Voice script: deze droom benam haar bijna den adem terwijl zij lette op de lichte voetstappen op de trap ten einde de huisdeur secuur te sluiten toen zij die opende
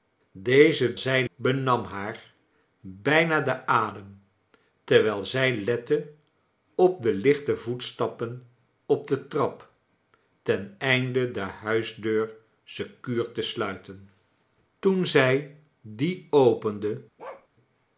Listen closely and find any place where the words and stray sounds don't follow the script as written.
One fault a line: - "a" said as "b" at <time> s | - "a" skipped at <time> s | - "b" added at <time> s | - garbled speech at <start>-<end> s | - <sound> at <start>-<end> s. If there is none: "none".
- "droom" said as "zij" at 1.0 s
- bark at 17.2-17.5 s